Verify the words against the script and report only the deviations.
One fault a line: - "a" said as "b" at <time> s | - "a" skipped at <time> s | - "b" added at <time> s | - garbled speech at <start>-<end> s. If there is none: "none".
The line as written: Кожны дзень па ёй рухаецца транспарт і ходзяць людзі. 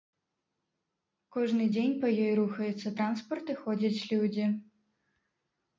none